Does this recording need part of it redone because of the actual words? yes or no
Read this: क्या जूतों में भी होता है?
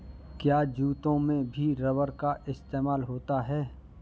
yes